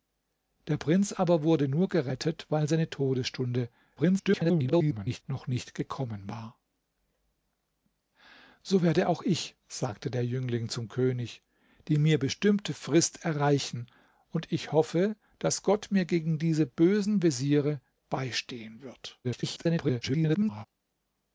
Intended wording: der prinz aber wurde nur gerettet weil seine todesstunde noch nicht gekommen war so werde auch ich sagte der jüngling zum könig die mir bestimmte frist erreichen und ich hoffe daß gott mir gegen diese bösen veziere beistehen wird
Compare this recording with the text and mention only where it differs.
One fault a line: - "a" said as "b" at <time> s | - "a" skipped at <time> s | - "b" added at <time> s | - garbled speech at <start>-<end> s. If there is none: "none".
- garbled speech at 4.0-5.2 s
- garbled speech at 19.2-20.6 s